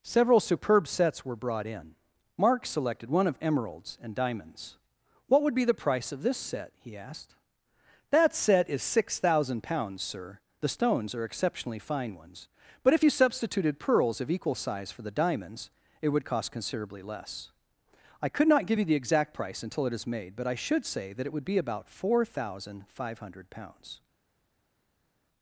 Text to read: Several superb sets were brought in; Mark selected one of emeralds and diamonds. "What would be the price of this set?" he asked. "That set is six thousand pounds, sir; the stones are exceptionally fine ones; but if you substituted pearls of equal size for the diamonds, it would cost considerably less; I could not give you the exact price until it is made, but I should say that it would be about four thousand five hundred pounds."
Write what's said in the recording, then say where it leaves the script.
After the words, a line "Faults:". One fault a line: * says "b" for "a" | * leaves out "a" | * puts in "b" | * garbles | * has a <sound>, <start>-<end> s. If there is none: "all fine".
Several superb sets were brought in; Mark selected one of emeralds and diamonds. "What would be the price of this set?" he asked. "That set is six thousand pounds, sir; the stones are exceptionally fine ones; but if you substituted pearls of equal size for the diamonds, it would cost considerably less; I could not give you the exact price until it is made, but I should say that it would be about four thousand five hundred pounds."
Faults:
all fine